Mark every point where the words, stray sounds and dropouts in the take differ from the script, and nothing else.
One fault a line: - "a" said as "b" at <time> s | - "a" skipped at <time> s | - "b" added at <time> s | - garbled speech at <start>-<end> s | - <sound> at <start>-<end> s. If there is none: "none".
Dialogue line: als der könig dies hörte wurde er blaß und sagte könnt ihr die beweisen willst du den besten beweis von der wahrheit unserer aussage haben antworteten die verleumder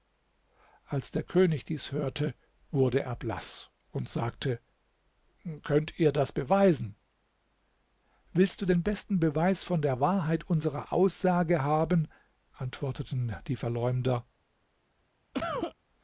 - "die" said as "das" at 6.1 s
- cough at 15.3-15.8 s